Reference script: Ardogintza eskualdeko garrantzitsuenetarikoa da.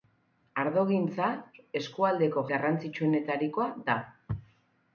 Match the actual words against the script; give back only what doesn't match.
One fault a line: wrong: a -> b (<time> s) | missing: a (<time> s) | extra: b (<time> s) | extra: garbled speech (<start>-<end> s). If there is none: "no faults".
no faults